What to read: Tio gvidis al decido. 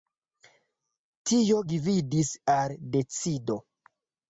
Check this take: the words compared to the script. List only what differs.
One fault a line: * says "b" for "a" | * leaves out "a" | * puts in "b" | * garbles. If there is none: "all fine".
all fine